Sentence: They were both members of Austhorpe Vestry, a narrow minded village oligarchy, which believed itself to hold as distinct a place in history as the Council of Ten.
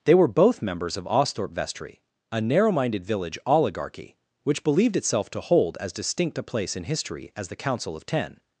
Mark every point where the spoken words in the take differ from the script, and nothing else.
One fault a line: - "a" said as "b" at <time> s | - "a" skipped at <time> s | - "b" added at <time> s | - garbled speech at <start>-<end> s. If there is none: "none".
none